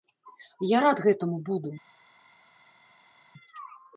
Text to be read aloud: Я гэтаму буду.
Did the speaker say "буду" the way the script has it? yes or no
yes